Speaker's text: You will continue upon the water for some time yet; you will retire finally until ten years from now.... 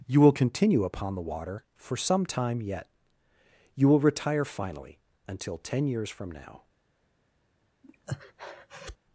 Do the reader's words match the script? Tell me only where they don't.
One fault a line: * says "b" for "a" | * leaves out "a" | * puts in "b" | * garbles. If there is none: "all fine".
all fine